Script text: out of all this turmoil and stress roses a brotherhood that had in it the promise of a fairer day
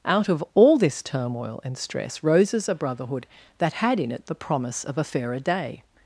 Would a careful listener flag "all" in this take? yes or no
no